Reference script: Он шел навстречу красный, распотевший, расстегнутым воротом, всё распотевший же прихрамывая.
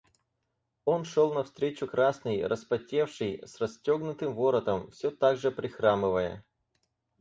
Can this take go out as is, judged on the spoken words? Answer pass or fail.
fail